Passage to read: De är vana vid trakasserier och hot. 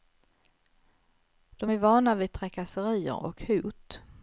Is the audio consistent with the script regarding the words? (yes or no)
yes